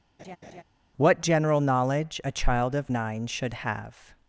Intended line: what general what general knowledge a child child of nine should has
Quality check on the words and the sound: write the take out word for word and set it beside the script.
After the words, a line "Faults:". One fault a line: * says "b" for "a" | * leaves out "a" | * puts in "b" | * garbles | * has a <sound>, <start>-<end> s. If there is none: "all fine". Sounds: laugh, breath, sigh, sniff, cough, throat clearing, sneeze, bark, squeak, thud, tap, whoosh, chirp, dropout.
what general knowledge a child of nine should have
Faults:
* has a laugh, 0.2-0.6 s
* leaves out "what general"
* leaves out "child"
* says "have" for "has"